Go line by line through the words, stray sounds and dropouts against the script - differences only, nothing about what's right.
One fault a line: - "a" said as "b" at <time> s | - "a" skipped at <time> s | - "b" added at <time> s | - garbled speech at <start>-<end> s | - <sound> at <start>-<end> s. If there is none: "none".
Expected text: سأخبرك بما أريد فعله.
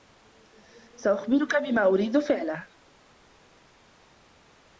none